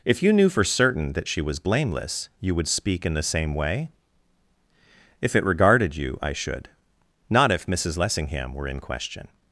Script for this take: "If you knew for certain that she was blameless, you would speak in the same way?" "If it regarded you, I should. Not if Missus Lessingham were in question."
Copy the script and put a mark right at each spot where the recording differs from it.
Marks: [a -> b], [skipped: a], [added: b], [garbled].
"If you knew for certain that she was blameless, you would speak in the same way?" "If it regarded you, I should. Not if Missus Lessingham were in question."